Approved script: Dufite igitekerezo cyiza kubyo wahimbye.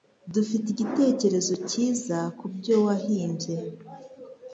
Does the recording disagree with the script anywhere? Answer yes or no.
no